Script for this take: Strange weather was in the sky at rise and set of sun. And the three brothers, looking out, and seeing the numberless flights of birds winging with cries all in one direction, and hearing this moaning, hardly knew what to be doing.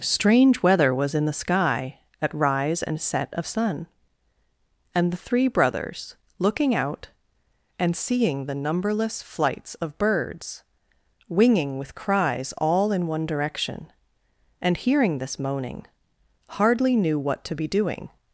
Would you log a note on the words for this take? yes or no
no